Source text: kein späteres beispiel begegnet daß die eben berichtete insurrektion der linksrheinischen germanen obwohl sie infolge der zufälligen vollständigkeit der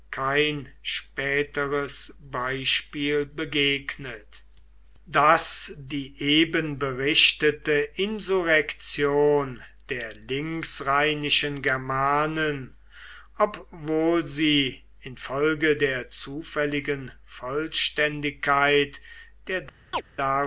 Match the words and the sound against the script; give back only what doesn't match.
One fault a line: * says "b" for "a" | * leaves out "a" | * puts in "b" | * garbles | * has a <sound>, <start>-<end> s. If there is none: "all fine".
* has a chirp, 19.9-20.0 s